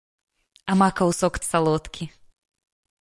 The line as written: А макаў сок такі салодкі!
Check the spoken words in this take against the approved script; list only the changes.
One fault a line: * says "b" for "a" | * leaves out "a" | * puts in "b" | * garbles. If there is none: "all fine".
* leaves out "такі"